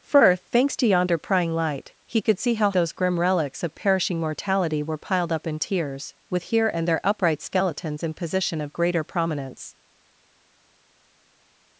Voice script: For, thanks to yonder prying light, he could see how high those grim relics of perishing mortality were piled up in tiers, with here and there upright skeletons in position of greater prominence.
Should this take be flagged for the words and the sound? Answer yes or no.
yes